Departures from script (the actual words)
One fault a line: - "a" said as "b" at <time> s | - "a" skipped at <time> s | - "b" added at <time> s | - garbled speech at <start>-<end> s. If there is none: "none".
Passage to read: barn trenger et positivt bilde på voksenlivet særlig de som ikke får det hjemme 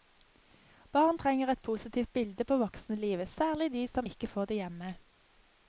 none